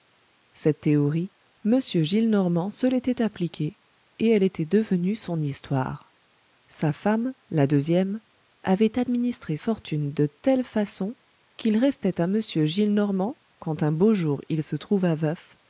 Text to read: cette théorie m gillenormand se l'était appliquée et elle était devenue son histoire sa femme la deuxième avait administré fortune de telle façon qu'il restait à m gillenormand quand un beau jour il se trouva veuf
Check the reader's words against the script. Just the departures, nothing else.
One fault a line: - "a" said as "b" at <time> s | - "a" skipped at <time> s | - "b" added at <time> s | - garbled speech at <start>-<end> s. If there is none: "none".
none